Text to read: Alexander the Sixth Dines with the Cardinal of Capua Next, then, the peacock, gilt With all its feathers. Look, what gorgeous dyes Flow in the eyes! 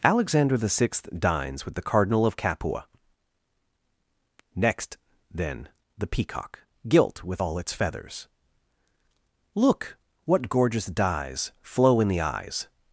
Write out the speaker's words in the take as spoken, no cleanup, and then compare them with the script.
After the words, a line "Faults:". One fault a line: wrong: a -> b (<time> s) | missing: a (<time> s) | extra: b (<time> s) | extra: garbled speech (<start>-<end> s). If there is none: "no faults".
Alexander the Sixth Dines with the Cardinal of Capua Next, then, the peacock, gilt With all its feathers. Look, what gorgeous dyes Flow in the eyes!
Faults:
no faults